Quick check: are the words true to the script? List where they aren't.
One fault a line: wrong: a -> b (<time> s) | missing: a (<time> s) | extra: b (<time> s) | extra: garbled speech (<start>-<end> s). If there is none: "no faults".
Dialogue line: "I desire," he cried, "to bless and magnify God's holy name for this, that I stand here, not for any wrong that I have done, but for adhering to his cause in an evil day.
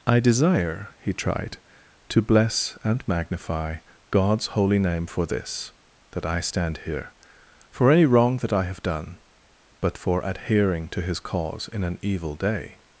wrong: cried -> tried (1.1 s)
missing: not (7.1 s)